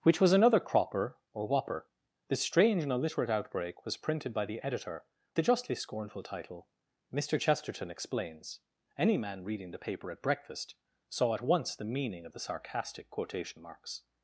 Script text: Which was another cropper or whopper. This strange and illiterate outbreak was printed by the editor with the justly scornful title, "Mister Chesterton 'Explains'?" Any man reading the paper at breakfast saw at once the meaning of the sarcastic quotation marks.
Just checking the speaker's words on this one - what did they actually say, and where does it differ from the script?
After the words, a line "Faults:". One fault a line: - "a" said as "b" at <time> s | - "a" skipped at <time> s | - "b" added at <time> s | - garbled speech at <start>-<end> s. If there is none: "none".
Which was another cropper or whopper. This strange and illiterate outbreak was printed by the editor the justly scornful title, "Mister Chesterton 'Explains'?" Any man reading the paper at breakfast saw at once the meaning of the sarcastic quotation marks.
Faults:
- "with" skipped at 5.0 s